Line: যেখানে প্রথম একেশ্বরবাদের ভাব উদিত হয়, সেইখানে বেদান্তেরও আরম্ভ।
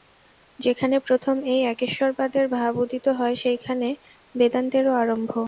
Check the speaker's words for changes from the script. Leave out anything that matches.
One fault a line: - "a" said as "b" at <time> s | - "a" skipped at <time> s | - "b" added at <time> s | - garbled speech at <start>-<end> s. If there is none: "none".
- "এই" added at 1.4 s